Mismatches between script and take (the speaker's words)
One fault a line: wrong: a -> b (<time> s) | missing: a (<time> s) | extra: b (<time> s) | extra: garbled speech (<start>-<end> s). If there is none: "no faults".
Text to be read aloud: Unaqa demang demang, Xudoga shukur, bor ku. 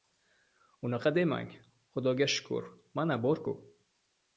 missing: demang (1.5 s)
extra: mana (2.9 s)